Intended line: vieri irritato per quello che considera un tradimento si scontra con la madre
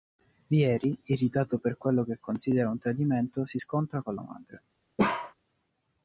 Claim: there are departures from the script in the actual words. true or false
false